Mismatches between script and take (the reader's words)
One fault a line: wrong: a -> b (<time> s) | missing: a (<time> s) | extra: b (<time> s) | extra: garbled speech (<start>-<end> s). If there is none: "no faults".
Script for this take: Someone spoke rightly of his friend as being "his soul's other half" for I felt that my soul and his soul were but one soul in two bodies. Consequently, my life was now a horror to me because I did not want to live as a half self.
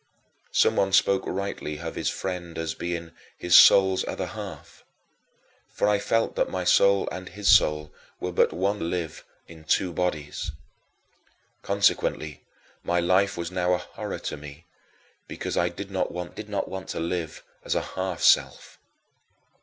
wrong: soul -> live (8.8 s)
extra: did not want (16.3 s)